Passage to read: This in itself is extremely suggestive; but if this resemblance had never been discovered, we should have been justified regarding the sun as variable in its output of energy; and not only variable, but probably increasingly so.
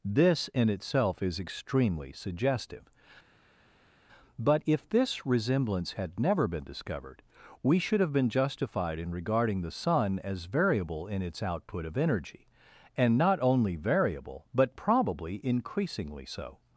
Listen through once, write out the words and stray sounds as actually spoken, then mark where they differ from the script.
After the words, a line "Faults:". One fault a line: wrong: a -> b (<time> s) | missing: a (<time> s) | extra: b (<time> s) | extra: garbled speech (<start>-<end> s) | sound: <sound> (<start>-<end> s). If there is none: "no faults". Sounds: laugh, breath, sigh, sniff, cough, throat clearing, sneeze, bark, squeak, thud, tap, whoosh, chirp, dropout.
This in itself is extremely suggestive; but if this resemblance had never been discovered, we should have been justified in regarding the sun as variable in its output of energy; and not only variable, but probably increasingly so.
Faults:
extra: in (9.0 s)